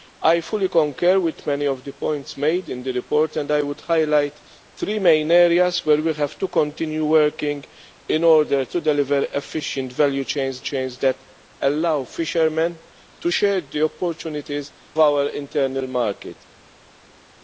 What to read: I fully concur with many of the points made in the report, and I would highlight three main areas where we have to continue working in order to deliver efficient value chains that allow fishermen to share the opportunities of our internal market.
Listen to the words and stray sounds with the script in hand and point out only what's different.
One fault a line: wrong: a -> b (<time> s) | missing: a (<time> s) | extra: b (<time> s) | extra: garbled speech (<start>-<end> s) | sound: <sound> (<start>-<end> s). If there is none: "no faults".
extra: chains (10.6 s)
missing: of (14.7 s)